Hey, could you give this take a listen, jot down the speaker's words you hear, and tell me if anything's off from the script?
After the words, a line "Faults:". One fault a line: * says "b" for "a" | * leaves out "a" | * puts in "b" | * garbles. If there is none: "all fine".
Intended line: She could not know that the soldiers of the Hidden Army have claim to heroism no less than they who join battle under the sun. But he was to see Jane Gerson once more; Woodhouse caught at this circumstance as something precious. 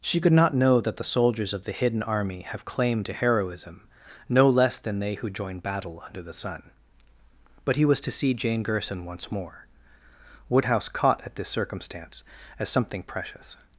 She could not know that the soldiers of the Hidden Army have claim to heroism no less than they who join battle under the sun. But he was to see Jane Gerson once more; Woodhouse caught at this circumstance as something precious.
Faults:
all fine